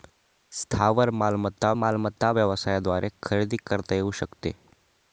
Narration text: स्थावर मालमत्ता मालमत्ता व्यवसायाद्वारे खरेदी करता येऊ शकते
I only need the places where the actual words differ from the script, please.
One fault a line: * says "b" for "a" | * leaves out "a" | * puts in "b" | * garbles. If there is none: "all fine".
all fine